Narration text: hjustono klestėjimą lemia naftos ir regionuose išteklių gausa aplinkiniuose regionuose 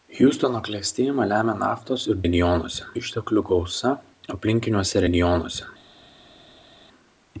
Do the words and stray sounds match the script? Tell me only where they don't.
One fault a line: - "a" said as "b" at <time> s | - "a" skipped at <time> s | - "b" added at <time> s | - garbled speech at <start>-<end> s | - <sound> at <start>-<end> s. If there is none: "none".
none